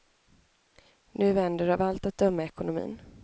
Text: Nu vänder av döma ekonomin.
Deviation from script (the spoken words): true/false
true